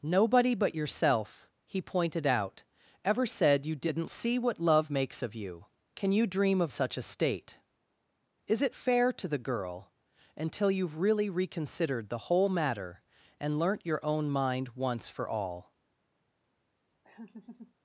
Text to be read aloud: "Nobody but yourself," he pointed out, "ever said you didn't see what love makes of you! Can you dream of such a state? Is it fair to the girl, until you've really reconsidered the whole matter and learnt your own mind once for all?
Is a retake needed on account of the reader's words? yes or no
no